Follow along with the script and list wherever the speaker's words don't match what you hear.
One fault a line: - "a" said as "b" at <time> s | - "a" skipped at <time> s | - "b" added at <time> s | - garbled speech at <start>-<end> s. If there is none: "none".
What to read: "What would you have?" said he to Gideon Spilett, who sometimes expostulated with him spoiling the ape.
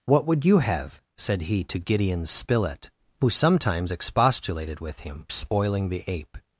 none